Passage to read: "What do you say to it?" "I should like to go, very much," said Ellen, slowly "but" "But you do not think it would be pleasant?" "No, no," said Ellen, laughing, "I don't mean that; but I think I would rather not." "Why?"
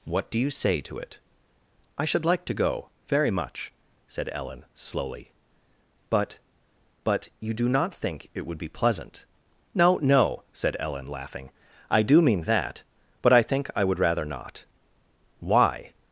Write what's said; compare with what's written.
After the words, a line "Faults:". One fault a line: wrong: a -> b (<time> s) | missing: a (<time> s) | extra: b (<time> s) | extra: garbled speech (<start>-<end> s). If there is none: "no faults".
"What do you say to it?" "I should like to go, very much," said Ellen, slowly "but" "But you do not think it would be pleasant?" "No, no," said Ellen, laughing, "I do mean that; but I think I would rather not." "Why?"
Faults:
wrong: don't -> do (12.0 s)